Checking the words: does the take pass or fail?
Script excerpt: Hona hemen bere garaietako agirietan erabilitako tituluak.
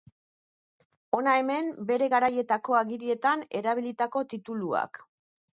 pass